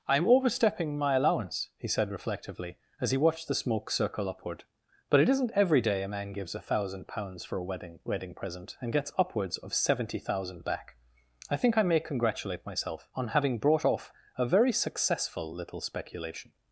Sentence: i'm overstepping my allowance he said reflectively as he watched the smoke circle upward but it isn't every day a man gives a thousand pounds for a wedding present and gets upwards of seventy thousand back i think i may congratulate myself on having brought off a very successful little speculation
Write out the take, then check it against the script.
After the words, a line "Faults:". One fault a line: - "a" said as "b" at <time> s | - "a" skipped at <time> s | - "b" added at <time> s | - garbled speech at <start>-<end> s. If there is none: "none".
i'm overstepping my allowance he said reflectively as he watched the smoke circle upward but it isn't every day a man gives a thousand pounds for a wedding wedding present and gets upwards of seventy thousand back i think i may congratulate myself on having brought off a very successful little speculation
Faults:
- "wedding" added at 8.0 s